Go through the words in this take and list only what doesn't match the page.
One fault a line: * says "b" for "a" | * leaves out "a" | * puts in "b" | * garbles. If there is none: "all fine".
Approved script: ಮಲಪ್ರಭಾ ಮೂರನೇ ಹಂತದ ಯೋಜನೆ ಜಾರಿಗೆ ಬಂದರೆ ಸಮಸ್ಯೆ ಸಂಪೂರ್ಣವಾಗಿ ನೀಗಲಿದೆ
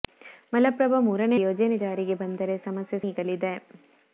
* leaves out "ಹಂತದ"
* leaves out "ಸಂಪೂರ್ಣವಾಗಿ"